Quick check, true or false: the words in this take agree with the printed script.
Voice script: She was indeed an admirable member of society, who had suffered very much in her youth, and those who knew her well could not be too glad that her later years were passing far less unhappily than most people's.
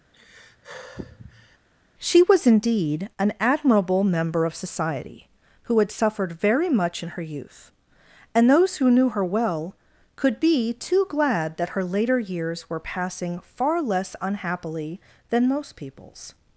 false